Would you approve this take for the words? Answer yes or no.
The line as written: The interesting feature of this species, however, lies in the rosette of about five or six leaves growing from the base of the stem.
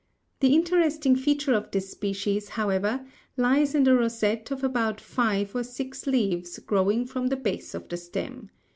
yes